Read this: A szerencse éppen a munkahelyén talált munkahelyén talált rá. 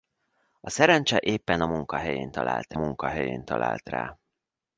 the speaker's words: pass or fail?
pass